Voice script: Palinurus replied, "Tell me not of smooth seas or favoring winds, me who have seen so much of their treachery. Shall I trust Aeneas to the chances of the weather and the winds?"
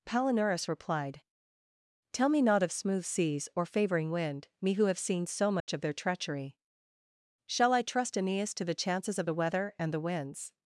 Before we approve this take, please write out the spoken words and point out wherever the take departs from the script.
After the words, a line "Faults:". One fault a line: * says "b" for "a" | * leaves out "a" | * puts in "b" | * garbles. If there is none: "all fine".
Palinurus replied, "Tell me not of smooth seas or favoring wind, me who have seen so much of their treachery. Shall I trust Aeneas to the chances of the weather and the winds?"
Faults:
* says "wind" for "winds"